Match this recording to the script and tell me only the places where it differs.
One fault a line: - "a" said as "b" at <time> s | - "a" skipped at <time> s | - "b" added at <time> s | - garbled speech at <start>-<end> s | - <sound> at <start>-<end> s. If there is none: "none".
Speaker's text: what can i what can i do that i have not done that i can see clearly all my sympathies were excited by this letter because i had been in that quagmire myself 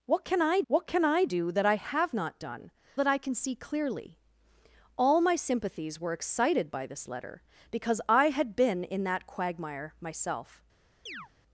- chirp at 11.1-11.3 s